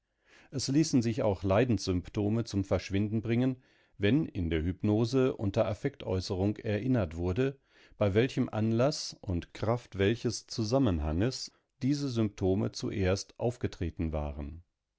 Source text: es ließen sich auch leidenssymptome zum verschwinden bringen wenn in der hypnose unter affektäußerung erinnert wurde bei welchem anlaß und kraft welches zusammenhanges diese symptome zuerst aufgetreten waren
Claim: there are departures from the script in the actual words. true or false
false